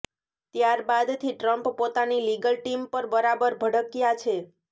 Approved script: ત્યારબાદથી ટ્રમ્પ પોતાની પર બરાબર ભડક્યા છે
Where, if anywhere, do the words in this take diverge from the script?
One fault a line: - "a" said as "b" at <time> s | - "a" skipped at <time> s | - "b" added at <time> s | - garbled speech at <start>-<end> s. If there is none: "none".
- "લીગલ ટીમ" added at 2.2 s